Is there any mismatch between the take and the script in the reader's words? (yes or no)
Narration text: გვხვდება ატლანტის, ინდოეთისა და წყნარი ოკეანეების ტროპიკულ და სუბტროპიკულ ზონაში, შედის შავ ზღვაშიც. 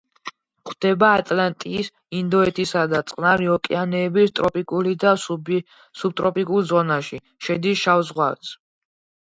no